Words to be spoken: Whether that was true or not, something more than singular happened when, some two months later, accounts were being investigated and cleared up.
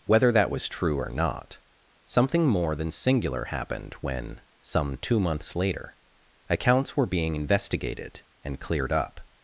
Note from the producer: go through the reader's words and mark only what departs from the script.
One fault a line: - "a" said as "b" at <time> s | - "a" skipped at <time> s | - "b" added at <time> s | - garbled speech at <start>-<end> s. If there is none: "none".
none